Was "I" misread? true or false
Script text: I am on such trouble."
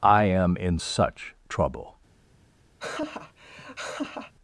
false